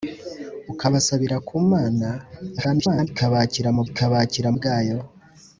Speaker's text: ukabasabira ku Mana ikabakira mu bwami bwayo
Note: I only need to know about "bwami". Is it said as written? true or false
false